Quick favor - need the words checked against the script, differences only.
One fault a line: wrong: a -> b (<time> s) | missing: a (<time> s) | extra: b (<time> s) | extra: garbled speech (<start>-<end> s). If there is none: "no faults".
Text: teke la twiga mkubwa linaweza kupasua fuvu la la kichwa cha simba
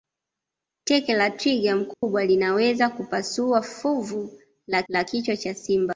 no faults